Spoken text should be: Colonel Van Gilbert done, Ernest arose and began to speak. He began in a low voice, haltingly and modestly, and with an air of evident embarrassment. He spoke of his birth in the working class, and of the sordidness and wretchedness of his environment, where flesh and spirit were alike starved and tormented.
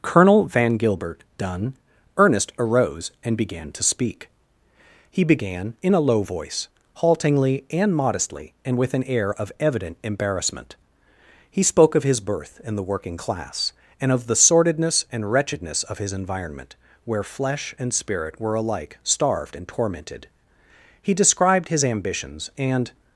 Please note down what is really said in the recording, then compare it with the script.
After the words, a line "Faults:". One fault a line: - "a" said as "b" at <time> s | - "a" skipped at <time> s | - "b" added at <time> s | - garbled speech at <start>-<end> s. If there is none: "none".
Colonel Van Gilbert done, Ernest arose and began to speak. He began in a low voice, haltingly and modestly, and with an air of evident embarrassment. He spoke of his birth in the working class, and of the sordidness and wretchedness of his environment, where flesh and spirit were alike starved and tormented. He described his ambitions and
Faults:
- "He described his ambitions and" added at 21.0 s